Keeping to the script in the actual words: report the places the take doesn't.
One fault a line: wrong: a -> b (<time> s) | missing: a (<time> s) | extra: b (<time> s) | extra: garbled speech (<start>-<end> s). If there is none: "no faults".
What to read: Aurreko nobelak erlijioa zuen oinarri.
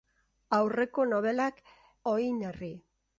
missing: erlijioa zuen (1.6 s)